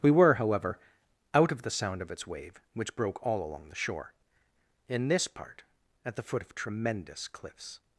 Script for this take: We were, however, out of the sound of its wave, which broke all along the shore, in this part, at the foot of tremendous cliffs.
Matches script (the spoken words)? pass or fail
pass